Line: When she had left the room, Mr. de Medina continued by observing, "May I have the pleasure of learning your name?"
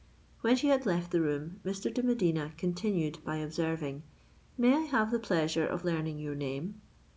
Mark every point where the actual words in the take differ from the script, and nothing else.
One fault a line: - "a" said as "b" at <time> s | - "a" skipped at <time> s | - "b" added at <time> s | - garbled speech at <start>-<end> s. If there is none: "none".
none